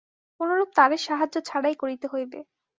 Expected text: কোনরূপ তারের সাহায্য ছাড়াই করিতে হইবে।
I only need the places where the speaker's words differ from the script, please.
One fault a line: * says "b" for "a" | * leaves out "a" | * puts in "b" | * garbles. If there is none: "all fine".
all fine